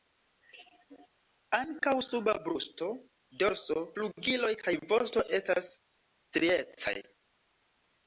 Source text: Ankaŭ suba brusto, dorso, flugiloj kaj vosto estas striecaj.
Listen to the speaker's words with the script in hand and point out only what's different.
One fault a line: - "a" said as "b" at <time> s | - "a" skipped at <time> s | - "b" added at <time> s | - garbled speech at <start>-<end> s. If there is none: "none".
none